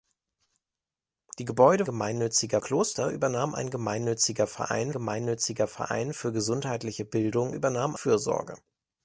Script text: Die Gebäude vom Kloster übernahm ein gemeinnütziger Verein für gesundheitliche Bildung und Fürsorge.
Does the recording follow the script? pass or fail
fail